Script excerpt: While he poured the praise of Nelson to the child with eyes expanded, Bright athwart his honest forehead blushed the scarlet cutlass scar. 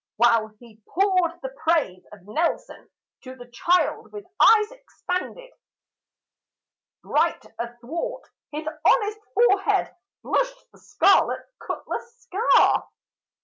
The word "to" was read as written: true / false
true